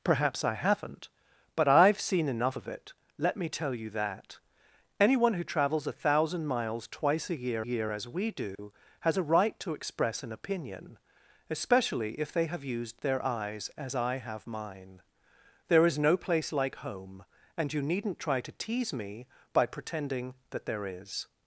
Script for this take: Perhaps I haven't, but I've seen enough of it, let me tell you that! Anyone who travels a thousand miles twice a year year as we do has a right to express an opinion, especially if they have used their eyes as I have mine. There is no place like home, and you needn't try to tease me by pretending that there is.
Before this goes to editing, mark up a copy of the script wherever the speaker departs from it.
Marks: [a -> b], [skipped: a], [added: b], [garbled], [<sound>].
Perhaps I haven't, but I've seen enough of it, let me tell you that! Anyone who travels a thousand miles twice a year year as we do [dropout] has a right to express an opinion, especially if they have used their eyes as I have mine. There is no place like home, and you needn't try to tease me by pretending that there is.